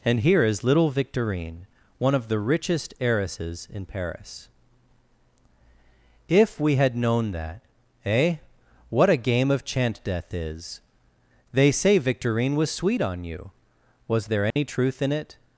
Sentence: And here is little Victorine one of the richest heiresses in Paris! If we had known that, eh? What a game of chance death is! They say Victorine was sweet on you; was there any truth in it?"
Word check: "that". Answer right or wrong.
right